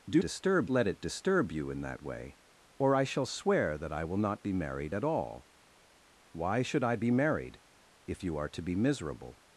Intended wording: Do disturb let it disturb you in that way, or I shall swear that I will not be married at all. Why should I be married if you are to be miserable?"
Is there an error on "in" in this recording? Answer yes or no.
no